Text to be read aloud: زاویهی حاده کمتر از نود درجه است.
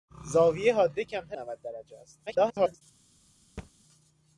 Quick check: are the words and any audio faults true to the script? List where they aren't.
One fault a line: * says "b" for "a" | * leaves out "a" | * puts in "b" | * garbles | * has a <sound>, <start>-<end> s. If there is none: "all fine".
* leaves out "از"
* garbles
* has a thud, 3.6-3.7 s